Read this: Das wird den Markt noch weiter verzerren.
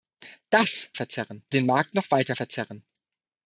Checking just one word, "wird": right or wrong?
wrong